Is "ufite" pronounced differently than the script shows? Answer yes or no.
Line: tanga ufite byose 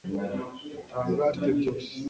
no